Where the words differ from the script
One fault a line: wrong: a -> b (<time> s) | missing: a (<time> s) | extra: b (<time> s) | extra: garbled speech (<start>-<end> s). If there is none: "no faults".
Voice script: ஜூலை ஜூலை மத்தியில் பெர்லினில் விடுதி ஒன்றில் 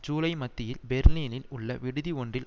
missing: ஜூலை (0.3 s)
extra: உள்ள (1.5 s)